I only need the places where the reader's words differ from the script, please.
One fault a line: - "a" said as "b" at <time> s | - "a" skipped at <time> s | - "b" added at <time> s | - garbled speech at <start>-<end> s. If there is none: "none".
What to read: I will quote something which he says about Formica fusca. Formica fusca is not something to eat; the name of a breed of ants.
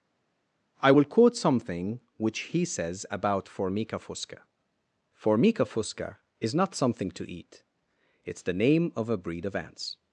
- "it's" added at 8.3 s